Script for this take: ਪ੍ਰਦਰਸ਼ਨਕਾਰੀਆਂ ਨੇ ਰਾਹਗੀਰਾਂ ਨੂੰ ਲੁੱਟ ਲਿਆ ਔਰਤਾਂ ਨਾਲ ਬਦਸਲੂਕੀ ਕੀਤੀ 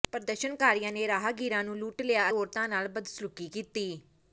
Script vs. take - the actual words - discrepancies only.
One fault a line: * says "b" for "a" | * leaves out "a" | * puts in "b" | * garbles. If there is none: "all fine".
all fine